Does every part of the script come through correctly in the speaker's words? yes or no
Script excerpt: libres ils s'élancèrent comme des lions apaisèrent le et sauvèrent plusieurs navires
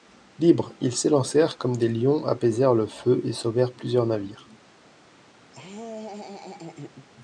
no